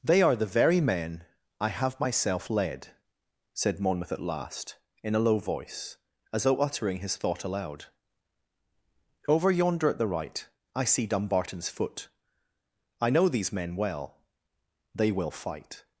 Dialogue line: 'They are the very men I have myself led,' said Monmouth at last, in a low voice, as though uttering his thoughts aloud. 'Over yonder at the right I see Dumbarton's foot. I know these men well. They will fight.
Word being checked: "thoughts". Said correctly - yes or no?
no